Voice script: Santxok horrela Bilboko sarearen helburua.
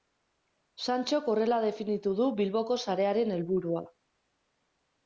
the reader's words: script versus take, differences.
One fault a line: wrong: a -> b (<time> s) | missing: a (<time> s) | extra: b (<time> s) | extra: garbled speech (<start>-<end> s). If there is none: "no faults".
extra: definitu du (1.7 s)